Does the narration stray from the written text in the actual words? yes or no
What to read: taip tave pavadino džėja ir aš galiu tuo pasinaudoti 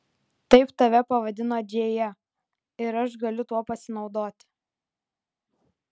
no